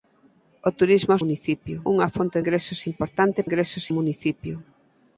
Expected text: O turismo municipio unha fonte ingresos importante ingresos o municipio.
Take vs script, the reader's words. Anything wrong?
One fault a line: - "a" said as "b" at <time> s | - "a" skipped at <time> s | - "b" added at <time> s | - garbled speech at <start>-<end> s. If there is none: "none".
none